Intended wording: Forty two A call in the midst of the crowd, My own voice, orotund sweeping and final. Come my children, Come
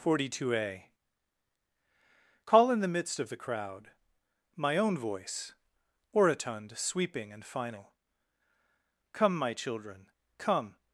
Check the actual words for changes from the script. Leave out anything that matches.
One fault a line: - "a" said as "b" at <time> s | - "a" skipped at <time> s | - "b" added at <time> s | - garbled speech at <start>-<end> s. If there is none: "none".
none